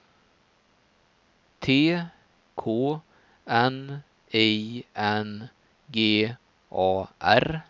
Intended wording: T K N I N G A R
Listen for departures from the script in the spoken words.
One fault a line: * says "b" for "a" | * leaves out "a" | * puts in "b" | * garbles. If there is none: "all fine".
all fine